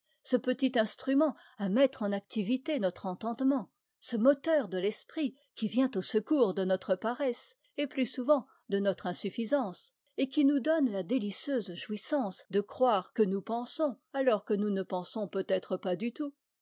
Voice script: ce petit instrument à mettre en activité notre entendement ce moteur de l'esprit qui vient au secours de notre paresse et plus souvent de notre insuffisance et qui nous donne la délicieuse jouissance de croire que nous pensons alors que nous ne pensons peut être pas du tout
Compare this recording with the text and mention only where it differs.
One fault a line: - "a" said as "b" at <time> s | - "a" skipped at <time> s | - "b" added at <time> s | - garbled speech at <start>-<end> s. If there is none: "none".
none